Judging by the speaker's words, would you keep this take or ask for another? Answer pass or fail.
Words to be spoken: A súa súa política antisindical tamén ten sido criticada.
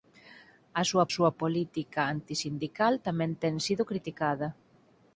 pass